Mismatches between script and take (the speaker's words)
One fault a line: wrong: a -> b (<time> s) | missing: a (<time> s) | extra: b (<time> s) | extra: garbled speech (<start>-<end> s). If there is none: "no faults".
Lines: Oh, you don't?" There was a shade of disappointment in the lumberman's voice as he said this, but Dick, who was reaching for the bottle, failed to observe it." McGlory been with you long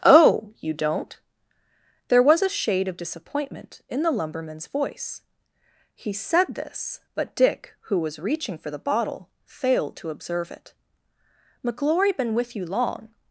missing: as (5.2 s)